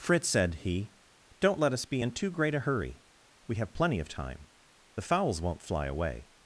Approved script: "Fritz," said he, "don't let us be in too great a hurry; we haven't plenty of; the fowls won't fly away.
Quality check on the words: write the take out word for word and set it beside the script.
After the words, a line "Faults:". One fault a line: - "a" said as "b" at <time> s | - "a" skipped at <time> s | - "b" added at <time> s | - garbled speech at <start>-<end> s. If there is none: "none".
"Fritz," said he, "don't let us be in too great a hurry; we have plenty of time; the fowls won't fly away.
Faults:
- "haven't" said as "have" at 3.5 s
- "time" added at 4.1 s